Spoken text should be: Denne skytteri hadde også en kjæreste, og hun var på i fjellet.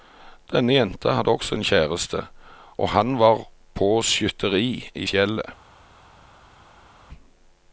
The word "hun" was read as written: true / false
false